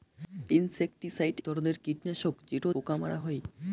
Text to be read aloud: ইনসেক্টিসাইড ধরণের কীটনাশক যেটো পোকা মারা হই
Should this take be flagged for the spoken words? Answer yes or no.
no